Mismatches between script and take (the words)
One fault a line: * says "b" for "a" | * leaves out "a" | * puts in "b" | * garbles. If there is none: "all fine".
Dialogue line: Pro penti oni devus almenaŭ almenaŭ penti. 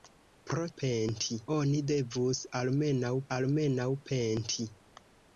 all fine